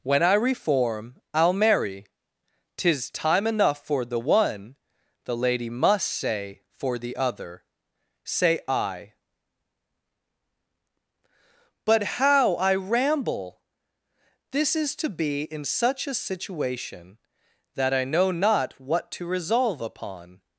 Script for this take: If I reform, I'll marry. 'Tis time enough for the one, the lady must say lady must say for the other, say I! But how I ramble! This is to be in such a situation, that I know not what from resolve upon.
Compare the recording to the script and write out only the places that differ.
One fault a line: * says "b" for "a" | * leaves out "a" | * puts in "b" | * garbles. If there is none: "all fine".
* says "When" for "If"
* leaves out "lady must say"
* says "to" for "from"